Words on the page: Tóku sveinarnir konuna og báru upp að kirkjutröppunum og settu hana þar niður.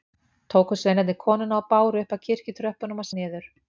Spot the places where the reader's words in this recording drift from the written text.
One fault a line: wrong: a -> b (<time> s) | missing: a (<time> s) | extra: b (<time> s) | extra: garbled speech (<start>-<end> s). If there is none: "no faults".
missing: settu hana þar (3.1 s)